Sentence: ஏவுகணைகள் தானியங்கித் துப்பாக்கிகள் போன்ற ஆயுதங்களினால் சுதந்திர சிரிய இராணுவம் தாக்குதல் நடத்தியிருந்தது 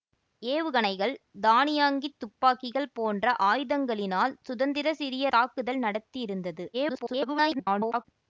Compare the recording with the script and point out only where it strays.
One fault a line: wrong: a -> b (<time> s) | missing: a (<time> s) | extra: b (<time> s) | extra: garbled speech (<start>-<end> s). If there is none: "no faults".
missing: இராணுவம் (5.3 s)
extra: garbled speech (6.7-8.1 s)